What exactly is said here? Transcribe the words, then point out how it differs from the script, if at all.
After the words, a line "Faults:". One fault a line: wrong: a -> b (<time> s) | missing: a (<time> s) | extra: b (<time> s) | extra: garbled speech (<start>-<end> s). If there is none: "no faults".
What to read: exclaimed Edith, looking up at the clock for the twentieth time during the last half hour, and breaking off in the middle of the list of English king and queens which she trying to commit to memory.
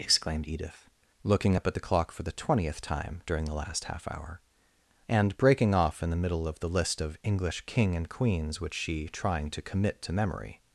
exclaimed Edith, looking up at the clock for the twentieth time during the last half hour, and breaking off in the middle of the list of English king and queens which she trying to commit to memory.
Faults:
no faults